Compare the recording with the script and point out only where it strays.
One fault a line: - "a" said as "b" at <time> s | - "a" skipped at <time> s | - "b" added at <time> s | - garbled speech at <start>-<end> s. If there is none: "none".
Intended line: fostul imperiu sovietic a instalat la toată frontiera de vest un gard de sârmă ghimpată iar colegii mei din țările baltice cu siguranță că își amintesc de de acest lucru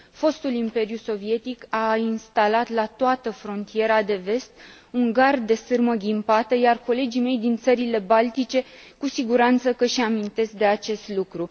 - "de" skipped at 10.7 s